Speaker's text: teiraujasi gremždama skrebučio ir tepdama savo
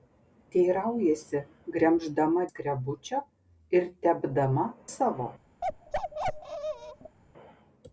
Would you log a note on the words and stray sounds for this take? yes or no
yes